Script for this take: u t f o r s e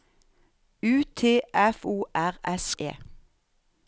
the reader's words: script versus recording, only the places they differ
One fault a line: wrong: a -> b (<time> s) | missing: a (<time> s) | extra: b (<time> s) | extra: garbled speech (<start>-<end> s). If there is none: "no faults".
no faults